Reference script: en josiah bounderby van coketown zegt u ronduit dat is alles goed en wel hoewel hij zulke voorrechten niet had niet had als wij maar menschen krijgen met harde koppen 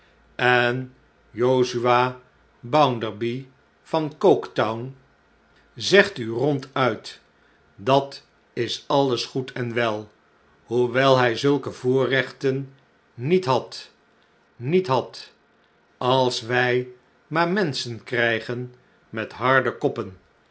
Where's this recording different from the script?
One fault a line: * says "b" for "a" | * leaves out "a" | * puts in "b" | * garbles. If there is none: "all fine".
all fine